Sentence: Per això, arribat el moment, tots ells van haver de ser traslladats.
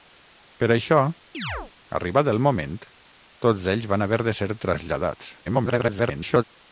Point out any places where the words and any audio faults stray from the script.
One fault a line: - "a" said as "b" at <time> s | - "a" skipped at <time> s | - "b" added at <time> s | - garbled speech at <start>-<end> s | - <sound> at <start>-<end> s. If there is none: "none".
- chirp at 1.3-1.7 s
- garbled speech at 5.4-6.4 s